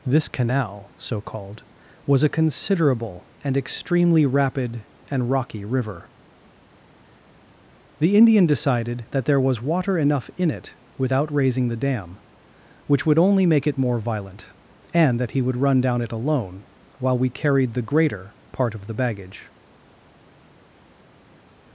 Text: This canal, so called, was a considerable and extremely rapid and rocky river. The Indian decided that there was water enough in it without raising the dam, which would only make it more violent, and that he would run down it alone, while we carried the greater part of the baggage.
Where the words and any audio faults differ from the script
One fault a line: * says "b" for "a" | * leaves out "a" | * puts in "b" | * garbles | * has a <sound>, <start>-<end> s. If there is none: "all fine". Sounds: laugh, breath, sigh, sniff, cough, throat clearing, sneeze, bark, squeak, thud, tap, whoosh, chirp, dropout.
all fine